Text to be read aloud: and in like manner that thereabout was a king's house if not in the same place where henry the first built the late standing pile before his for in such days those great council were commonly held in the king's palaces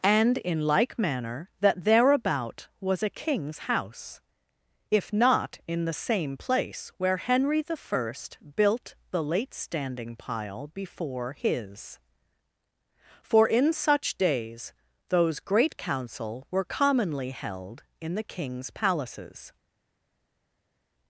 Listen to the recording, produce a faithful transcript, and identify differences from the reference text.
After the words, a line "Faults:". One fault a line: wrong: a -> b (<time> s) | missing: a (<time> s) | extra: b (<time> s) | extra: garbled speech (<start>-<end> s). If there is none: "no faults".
and in like manner that thereabout was a king's house if not in the same place where henry the first built the late standing pile before his for in such days those great council were commonly held in the king's palaces
Faults:
no faults